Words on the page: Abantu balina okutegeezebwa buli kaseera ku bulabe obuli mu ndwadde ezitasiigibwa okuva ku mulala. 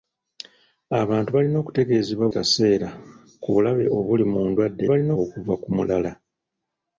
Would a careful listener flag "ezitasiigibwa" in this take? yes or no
yes